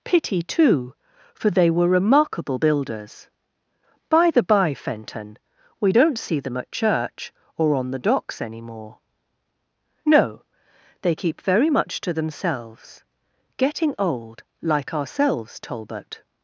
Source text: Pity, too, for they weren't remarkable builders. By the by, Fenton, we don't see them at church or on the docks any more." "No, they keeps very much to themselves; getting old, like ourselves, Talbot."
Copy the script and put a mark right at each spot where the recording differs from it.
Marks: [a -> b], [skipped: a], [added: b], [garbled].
Pity, too, for they [weren't -> were] remarkable builders. By the by, Fenton, we don't see them at church or on the docks any more." "No, they [keeps -> keep] very much to themselves; getting old, like ourselves, Talbot."